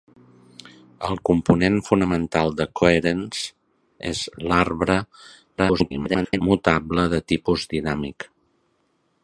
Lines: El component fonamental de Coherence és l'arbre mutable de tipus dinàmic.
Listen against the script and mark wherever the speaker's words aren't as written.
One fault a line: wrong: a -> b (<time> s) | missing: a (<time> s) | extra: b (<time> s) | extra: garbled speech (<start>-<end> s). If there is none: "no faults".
extra: garbled speech (5.6-6.4 s)